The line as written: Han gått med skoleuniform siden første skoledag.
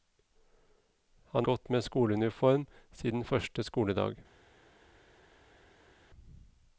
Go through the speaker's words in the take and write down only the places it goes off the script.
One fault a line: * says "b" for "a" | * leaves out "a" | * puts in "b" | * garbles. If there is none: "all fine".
all fine